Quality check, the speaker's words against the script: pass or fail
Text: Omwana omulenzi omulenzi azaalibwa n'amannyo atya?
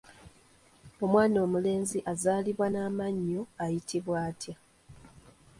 fail